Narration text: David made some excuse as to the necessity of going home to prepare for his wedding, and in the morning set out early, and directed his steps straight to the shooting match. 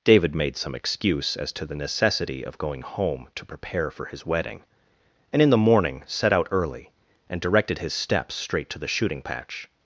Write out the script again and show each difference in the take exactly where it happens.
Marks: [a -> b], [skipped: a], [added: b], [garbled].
David made some excuse as to the necessity of going home to prepare for his wedding, and in the morning set out early, and directed his steps straight to the shooting [match. -> patch]